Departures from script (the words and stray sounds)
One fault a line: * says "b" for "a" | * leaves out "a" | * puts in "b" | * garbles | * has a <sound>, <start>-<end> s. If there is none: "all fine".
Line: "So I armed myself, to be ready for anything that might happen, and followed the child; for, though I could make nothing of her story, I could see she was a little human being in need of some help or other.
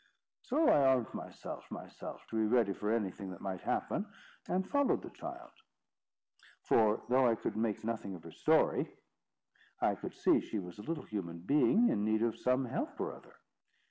* puts in "myself"